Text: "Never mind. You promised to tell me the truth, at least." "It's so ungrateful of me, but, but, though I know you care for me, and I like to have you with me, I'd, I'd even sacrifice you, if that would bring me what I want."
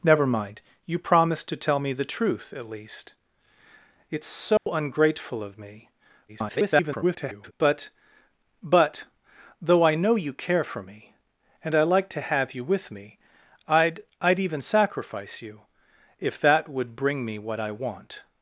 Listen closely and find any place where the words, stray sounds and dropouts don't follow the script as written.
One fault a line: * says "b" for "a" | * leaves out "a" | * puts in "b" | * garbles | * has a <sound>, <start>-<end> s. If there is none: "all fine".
* has a dropout, 4.6-4.7 s
* garbles